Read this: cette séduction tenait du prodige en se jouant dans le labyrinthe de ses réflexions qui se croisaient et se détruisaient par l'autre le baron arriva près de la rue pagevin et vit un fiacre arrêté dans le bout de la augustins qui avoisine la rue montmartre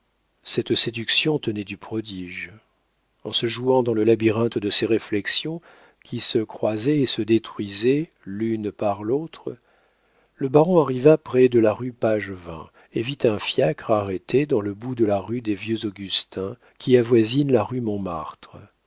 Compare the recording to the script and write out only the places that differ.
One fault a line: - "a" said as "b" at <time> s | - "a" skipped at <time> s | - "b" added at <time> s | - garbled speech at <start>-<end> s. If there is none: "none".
- "l'une" added at 8.2 s
- "rue des vieux" added at 15.2 s